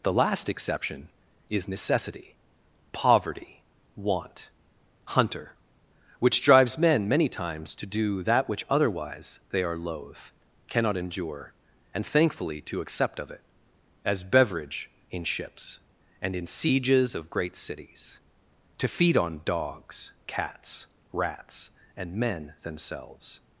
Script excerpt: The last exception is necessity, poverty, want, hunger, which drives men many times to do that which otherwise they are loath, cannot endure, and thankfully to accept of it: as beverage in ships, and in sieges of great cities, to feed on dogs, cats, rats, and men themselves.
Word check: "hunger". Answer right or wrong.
wrong